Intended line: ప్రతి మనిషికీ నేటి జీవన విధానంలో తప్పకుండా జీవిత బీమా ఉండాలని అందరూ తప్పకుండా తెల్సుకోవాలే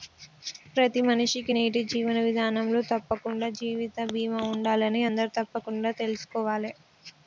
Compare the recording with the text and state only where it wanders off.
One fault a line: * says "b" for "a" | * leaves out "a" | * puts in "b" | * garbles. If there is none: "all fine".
all fine